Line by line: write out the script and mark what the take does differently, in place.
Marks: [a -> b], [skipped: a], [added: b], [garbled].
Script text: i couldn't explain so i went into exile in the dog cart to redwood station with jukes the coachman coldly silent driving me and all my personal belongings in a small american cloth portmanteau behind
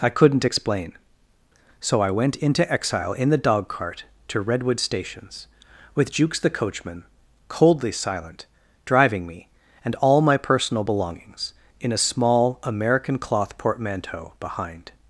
i couldn't explain so i went into exile in the dog cart to redwood [station -> stations] with jukes the coachman coldly silent driving me and all my personal belongings in a small american cloth portmanteau behind